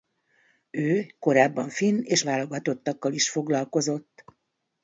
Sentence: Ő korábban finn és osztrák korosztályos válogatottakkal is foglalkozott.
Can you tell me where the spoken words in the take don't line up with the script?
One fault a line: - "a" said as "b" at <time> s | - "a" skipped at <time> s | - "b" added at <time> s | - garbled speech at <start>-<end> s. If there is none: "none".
- "osztrák korosztályos" skipped at 2.3 s